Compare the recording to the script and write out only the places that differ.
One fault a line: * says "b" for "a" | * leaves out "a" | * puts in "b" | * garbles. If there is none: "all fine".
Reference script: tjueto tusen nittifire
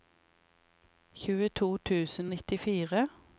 all fine